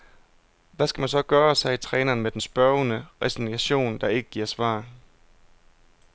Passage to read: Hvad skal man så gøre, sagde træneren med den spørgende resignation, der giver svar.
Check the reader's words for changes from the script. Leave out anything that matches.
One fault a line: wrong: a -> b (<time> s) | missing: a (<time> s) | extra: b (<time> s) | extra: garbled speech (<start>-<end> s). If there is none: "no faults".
extra: ikke (4.1 s)